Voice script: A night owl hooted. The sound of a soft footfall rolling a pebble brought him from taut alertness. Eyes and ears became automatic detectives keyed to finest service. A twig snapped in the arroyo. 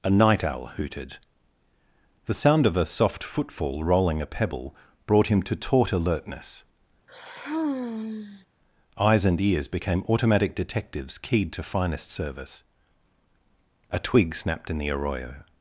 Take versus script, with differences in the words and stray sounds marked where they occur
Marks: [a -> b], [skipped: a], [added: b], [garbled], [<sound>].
A night owl hooted. The sound of a soft footfall rolling a pebble brought him [from -> to] taut alertness. [sigh] Eyes and ears became automatic detectives keyed to finest service. A twig snapped in the arroyo.